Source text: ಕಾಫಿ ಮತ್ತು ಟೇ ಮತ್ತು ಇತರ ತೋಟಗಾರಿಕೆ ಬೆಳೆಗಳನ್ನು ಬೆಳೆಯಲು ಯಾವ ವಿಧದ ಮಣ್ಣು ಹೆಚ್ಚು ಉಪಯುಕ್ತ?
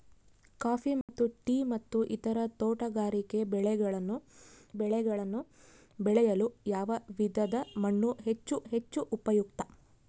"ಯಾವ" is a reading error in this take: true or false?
false